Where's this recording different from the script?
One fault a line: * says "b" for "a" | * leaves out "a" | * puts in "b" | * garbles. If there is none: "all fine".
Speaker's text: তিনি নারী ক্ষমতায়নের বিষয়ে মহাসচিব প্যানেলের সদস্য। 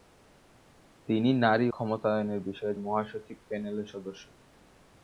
all fine